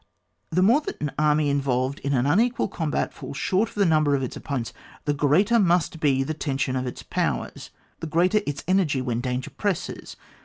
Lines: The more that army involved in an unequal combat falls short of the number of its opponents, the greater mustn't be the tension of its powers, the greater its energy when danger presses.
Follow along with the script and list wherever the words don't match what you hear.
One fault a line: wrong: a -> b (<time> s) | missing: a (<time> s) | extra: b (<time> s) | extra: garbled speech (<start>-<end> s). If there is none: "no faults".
extra: an (1.0 s)
wrong: mustn't -> must (5.6 s)